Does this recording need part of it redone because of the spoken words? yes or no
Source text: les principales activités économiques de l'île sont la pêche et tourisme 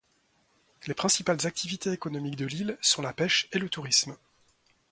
yes